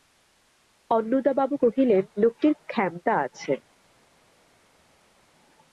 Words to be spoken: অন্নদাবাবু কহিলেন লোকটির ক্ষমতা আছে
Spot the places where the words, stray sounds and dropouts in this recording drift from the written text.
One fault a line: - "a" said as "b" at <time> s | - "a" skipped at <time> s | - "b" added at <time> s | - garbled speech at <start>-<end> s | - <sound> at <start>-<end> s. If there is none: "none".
none